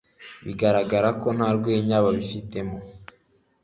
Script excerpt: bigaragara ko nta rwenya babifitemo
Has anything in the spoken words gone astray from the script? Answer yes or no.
no